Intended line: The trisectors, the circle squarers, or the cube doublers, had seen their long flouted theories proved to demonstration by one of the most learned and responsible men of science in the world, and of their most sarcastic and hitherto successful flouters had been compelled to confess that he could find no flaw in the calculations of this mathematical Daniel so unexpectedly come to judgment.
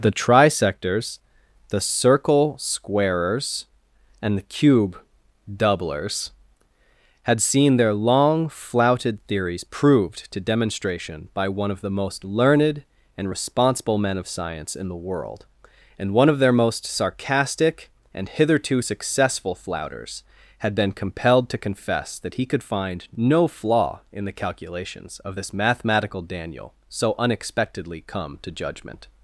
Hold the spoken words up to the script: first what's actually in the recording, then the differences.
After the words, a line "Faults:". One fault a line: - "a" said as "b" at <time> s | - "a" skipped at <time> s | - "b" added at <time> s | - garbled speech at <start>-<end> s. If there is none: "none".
The trisectors, the circle squarers, and the cube doublers, had seen their long flouted theories proved to demonstration by one of the most learned and responsible men of science in the world, and one of their most sarcastic and hitherto successful flouters had been compelled to confess that he could find no flaw in the calculations of this mathematical Daniel so unexpectedly come to judgment.
Faults:
- "or" said as "and" at 4.2 s
- "one" added at 16.1 s